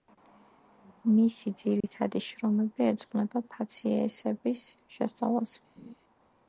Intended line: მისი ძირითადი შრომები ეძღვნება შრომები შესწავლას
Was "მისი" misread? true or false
false